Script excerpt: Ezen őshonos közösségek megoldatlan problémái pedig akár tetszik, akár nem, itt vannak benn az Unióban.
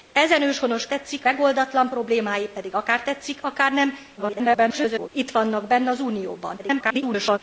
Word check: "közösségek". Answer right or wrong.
wrong